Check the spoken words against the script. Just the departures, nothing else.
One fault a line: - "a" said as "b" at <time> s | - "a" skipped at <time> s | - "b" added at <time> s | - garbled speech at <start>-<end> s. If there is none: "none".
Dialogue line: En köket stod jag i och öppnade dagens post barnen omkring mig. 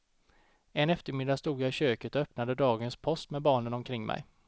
- "köket" said as "eftermiddag" at 0.9 s
- "köket" added at 1.7 s
- "med" added at 3.3 s